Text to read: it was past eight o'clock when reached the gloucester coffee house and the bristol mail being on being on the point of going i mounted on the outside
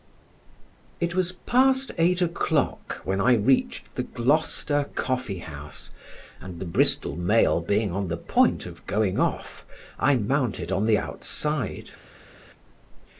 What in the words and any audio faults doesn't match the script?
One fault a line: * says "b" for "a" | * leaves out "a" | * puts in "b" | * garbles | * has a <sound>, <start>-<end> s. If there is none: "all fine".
* puts in "i"
* leaves out "being on"
* puts in "off"